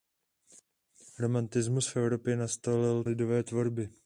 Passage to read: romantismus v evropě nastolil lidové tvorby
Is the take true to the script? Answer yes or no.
yes